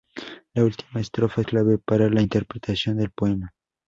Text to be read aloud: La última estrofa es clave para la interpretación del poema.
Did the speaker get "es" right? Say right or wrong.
wrong